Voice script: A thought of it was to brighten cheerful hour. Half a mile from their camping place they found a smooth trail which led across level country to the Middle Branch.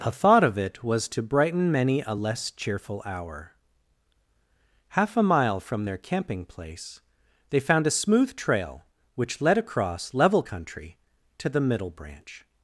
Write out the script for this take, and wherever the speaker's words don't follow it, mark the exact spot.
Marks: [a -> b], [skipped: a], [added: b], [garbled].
A thought of it was to brighten [added: many a less] cheerful hour. Half a mile from their camping place they found a smooth trail which led across level country to the Middle Branch.